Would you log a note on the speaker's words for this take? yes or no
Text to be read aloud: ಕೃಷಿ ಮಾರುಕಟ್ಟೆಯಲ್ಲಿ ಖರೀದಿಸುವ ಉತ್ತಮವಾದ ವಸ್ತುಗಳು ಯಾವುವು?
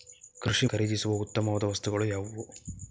yes